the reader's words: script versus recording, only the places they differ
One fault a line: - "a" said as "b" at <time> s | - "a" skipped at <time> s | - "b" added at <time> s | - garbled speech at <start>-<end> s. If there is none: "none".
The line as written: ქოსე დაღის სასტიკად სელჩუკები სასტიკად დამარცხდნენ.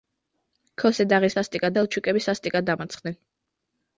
none